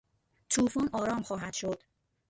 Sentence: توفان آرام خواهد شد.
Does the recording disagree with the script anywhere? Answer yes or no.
no